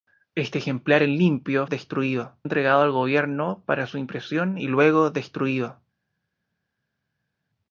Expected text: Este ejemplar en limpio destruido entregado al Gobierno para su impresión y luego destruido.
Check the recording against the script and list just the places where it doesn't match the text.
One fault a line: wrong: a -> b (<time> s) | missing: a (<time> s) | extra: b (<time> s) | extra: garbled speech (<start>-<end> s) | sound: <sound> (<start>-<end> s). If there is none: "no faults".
no faults